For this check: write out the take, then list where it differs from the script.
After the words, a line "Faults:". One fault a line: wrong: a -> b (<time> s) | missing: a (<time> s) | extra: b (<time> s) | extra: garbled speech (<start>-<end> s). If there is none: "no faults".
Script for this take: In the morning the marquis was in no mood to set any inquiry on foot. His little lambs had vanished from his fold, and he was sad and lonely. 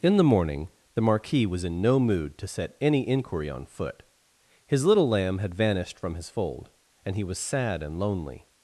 In the morning the marquis was in no mood to set any inquiry on foot. His little lamb had vanished from his fold, and he was sad and lonely.
Faults:
wrong: lambs -> lamb (5.1 s)